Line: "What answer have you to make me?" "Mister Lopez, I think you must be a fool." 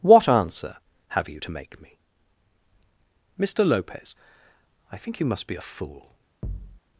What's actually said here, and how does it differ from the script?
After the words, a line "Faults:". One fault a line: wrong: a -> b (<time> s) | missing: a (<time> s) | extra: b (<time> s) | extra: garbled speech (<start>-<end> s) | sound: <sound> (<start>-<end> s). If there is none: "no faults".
"What answer have you to make me?" "Mister Lopez, I think you must be a fool."
Faults:
sound: thud (6.4-6.8 s)